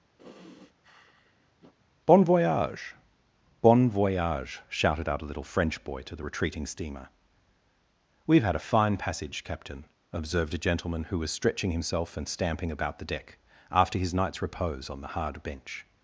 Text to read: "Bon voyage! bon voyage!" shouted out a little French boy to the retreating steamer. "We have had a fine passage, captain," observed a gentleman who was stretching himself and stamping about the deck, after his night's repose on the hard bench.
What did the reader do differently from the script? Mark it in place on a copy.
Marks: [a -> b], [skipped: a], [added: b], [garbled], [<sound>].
[sigh] "Bon voyage! bon voyage!" shouted out a little French boy to the retreating steamer. "We have had a fine passage, captain," observed a gentleman who was stretching himself and stamping about the deck, after his night's repose on the hard bench.